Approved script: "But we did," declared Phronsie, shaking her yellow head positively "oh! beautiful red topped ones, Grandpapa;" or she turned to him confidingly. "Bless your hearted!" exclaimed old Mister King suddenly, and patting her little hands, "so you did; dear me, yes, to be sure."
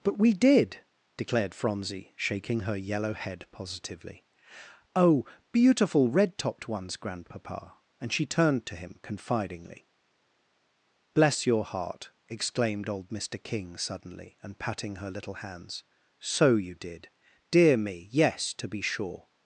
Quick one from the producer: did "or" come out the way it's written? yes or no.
no